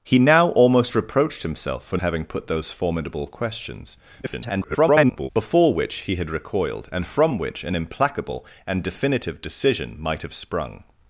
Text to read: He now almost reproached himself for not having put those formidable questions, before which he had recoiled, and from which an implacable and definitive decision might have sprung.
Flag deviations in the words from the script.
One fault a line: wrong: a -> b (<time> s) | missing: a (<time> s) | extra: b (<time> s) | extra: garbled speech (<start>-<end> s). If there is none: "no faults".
missing: not (2.0 s)
extra: garbled speech (4.2-5.3 s)